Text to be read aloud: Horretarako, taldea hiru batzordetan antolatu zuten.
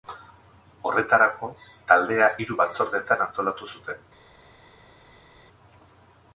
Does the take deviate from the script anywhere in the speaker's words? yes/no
no